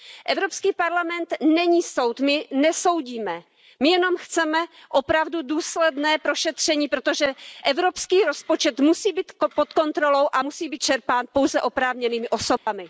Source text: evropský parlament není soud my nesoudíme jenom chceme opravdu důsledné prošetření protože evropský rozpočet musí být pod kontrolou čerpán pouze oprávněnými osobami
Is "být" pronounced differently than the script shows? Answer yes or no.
no